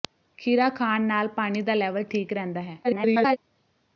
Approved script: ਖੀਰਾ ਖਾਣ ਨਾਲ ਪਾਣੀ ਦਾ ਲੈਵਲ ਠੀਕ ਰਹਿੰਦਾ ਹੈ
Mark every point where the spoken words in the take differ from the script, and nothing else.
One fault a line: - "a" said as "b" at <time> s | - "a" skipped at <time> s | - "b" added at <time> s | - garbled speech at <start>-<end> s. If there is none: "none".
- garbled speech at 2.8-3.4 s